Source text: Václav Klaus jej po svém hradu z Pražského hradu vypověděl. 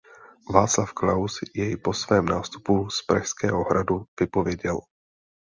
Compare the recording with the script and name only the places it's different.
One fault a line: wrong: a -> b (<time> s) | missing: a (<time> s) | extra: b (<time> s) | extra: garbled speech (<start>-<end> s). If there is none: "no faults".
wrong: hradu -> nástupu (2.2 s)